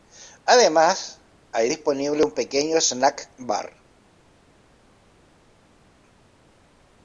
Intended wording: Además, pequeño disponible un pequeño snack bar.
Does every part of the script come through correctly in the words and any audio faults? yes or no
no